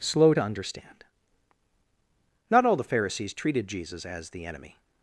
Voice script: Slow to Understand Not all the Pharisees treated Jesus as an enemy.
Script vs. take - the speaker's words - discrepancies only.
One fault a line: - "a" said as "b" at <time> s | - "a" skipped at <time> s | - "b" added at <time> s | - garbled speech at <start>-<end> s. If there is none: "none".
- "an" said as "the" at 4.3 s